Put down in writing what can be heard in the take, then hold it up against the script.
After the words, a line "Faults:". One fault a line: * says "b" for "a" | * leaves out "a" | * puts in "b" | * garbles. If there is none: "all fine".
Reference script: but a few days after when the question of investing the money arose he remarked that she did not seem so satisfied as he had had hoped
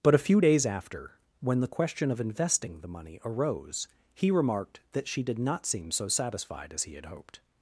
but a few days after when the question of investing the money arose he remarked that she did not seem so satisfied as he had hoped
Faults:
* leaves out "had"